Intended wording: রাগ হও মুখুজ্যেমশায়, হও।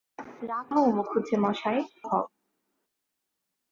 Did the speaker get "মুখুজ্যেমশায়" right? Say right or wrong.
right